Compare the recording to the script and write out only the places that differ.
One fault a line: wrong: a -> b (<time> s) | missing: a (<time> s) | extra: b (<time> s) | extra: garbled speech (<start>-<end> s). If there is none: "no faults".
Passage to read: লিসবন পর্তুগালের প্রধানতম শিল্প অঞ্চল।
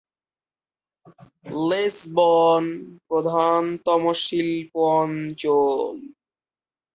missing: পর্তুগালের (2.6 s)